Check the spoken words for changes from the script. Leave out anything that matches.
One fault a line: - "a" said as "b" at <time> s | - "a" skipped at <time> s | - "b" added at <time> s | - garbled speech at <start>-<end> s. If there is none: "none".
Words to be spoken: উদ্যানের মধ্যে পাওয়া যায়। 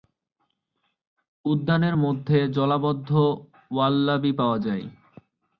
- "জলাবদ্ধ ওয়াল্লাবি" added at 2.5 s